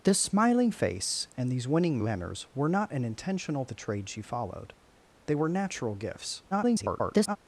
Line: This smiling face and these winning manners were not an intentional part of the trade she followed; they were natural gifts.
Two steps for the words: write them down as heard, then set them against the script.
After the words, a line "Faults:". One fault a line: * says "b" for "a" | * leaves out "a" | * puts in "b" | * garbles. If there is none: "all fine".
This smiling face and these winning manners were not an intentional the trade she followed; they were natural gifts. [garbled]
Faults:
* leaves out "part of"
* garbles